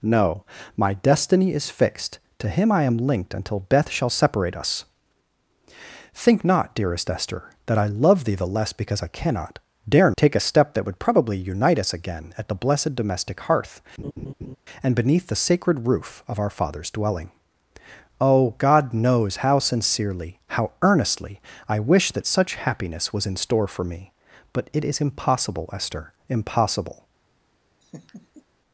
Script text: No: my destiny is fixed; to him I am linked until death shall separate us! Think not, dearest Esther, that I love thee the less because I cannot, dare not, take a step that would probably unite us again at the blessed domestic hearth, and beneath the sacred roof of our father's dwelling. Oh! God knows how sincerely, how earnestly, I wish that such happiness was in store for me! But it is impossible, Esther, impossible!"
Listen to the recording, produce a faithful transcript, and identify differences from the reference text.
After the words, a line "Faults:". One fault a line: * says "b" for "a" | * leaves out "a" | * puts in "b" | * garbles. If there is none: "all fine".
No: my destiny is fixed; to him I am linked until death shall separate us! Think not, dearest Esther, that I love thee the less because I cannot, dare take a step that would probably unite us again at the blessed domestic hearth, and beneath the sacred roof of our father's dwelling. Oh! God knows how sincerely, how earnestly, I wish that such happiness was in store for me! But it is impossible, Esther, impossible!"
Faults:
* leaves out "not"